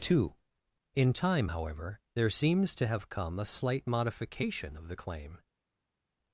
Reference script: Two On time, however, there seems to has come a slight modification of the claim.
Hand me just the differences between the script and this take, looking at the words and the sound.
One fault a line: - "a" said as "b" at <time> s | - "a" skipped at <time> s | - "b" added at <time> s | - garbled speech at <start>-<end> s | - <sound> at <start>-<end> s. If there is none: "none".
- "On" said as "In" at 0.9 s
- "has" said as "have" at 2.9 s